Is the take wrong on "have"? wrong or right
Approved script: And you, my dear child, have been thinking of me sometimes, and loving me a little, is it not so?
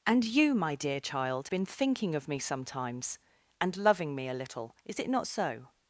wrong